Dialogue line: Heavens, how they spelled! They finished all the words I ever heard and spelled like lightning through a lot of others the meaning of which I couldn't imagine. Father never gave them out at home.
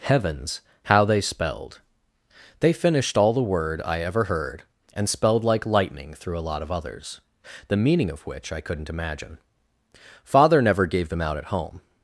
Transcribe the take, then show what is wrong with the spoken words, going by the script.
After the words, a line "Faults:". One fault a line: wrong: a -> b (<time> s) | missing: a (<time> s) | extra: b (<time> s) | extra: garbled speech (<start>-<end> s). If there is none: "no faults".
Heavens, how they spelled! They finished all the word I ever heard and spelled like lightning through a lot of others the meaning of which I couldn't imagine. Father never gave them out at home.
Faults:
wrong: words -> word (3.4 s)